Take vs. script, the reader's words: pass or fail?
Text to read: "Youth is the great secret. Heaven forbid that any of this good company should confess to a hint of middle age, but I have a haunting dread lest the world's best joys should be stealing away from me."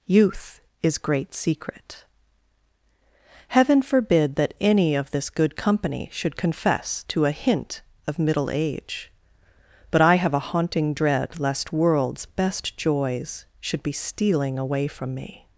fail